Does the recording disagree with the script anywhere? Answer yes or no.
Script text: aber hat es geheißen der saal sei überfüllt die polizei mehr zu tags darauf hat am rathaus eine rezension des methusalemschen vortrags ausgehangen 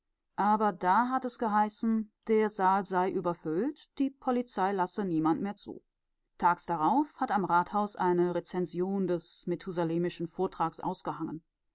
yes